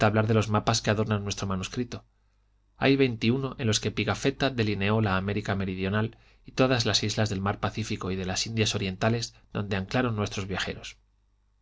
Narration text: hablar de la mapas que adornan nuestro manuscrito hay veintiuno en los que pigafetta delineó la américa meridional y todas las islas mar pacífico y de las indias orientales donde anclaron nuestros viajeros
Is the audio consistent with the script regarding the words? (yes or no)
no